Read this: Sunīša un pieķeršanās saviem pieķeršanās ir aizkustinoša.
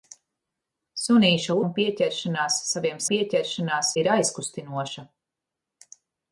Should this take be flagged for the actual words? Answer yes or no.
no